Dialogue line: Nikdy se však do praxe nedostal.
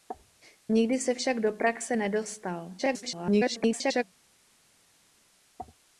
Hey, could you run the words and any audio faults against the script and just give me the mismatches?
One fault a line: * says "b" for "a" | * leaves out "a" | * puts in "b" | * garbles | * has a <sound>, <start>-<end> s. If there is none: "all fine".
* garbles